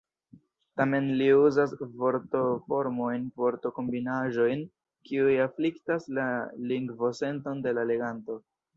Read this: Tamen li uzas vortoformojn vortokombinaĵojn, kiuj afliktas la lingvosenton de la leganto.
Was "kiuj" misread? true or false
false